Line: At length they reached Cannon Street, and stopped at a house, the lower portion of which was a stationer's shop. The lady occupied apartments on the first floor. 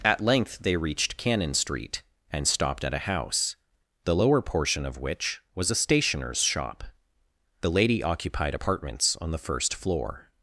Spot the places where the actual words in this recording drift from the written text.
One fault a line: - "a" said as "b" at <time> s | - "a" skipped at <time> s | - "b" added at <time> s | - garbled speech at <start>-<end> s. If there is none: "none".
none